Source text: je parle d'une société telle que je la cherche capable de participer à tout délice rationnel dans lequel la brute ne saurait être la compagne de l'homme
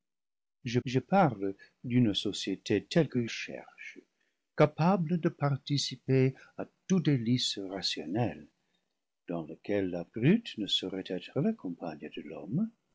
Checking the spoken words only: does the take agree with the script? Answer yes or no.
no